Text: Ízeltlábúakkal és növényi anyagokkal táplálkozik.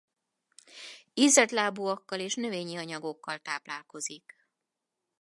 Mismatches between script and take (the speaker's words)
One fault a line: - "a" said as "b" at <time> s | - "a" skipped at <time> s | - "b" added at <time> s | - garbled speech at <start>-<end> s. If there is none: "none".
none